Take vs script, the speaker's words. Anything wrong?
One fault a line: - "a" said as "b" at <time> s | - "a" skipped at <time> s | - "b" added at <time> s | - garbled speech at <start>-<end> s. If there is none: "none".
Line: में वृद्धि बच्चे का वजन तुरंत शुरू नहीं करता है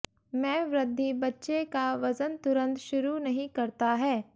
none